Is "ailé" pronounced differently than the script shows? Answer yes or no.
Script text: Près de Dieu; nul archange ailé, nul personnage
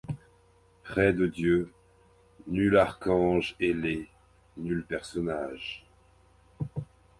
no